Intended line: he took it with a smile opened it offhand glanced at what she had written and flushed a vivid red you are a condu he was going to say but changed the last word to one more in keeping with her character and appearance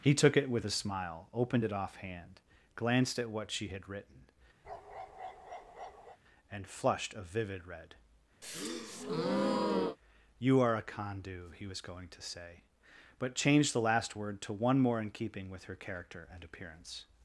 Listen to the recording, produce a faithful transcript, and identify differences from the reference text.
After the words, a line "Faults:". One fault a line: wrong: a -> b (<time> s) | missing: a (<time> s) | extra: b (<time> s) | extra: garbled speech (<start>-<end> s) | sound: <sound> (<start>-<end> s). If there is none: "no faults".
he took it with a smile opened it offhand glanced at what she had written and flushed a vivid red you are a condu he was going to say but changed the last word to one more in keeping with her character and appearance
Faults:
sound: bark (4.6-6.2 s)
sound: breath (8.4-10.0 s)